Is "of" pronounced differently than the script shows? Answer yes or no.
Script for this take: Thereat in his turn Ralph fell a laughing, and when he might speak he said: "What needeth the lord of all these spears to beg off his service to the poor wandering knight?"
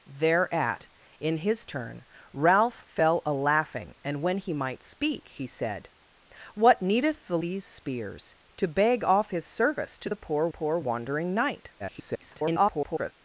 yes